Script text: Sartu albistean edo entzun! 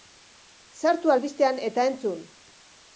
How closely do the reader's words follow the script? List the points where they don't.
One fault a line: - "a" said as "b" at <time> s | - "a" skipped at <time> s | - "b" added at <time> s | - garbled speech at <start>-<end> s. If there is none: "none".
- "edo" said as "eta" at 1.7 s